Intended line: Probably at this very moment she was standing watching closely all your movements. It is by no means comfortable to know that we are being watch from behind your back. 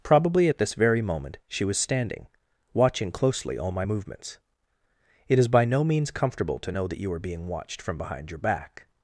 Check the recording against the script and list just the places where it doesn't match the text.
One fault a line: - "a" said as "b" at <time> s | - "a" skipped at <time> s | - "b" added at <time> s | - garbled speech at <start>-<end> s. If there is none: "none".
- "your" said as "my" at 3.7 s
- "we" said as "you" at 7.0 s
- "watch" said as "watched" at 7.5 s